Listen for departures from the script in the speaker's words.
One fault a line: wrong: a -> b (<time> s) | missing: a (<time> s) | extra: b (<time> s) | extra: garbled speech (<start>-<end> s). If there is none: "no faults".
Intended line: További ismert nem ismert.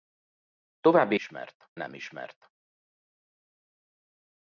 no faults